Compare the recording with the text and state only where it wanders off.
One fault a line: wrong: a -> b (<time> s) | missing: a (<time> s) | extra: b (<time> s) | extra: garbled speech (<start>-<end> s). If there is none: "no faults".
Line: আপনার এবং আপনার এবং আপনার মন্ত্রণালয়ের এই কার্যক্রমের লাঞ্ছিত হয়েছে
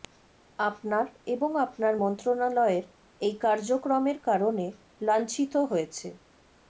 missing: এবং আপনার (1.9 s)
extra: কারণে (4.3 s)